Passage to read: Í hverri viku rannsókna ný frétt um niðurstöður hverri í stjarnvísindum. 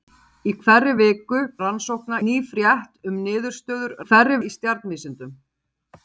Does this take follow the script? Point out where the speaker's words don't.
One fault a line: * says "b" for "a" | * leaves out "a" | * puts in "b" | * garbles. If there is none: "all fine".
all fine